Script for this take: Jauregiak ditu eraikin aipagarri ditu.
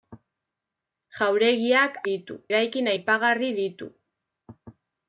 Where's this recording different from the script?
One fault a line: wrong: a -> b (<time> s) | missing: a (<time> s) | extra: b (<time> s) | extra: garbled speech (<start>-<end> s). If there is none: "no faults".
no faults